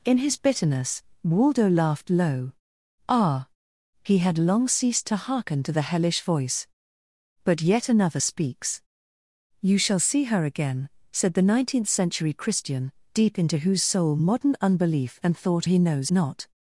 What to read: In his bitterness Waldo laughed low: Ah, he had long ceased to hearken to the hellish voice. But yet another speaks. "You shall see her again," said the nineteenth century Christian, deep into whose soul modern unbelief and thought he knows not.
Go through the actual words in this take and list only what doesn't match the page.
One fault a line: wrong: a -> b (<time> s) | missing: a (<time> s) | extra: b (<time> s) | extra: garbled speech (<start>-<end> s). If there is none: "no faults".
no faults